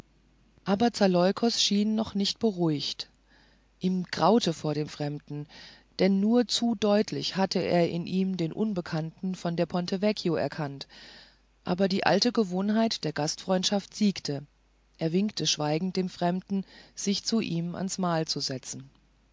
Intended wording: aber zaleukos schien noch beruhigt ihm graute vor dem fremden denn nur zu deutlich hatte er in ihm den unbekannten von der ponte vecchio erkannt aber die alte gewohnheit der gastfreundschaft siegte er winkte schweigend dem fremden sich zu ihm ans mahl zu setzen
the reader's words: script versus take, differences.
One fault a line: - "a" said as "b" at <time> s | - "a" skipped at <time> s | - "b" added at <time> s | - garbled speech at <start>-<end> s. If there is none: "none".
- "nicht" added at 2.1 s